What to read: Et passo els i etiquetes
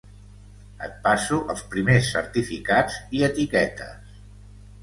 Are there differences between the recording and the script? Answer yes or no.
yes